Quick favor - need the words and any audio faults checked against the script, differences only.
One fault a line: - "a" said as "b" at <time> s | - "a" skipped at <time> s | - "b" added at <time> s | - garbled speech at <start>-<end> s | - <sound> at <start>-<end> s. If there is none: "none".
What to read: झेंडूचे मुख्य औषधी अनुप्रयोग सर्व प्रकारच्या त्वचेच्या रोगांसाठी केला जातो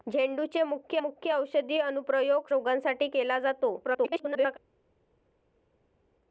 - "मुख्य" added at 1.0 s
- "सर्व प्रकारच्या त्वचेच्या" skipped at 2.5 s
- garbled speech at 3.8-4.6 s